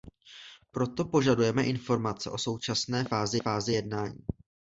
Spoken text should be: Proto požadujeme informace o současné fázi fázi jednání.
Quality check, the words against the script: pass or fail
pass